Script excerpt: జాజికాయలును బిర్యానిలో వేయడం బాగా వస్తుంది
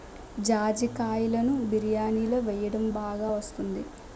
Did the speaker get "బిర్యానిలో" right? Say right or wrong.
right